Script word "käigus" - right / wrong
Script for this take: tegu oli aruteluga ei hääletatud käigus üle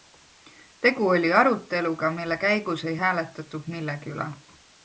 wrong